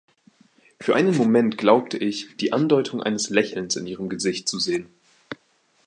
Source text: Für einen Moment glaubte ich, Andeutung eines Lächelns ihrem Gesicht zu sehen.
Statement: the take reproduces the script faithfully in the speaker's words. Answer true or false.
false